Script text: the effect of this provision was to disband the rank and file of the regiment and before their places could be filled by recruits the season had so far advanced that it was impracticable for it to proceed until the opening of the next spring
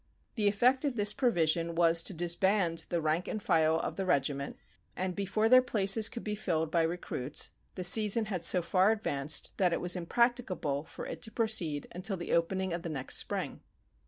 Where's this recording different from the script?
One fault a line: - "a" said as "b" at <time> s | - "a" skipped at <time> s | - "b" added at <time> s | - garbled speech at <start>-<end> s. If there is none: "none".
none